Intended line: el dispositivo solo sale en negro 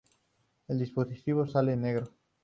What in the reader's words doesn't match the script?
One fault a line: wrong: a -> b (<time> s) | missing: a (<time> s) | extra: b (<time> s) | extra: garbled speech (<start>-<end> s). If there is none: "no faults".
missing: solo (1.4 s)